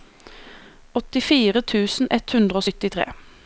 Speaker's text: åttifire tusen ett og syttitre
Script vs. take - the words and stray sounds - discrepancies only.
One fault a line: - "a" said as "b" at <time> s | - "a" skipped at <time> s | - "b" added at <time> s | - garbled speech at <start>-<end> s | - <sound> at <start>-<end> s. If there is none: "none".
- "hundre" added at 2.3 s